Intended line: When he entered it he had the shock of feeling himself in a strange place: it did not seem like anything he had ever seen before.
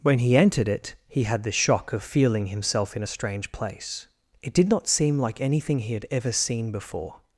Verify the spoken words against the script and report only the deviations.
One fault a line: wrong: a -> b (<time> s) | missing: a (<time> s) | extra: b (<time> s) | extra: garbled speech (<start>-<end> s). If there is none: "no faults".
no faults